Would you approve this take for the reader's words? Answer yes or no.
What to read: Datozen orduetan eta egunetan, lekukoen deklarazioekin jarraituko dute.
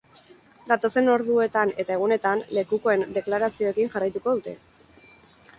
yes